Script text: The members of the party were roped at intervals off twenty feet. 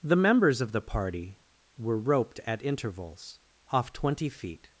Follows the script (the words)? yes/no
yes